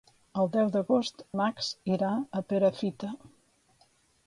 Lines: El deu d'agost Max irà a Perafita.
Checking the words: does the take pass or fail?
pass